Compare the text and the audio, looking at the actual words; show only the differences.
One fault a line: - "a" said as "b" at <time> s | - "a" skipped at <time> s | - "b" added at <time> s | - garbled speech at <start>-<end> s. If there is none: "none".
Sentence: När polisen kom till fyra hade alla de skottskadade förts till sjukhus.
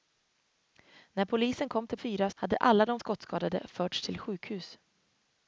none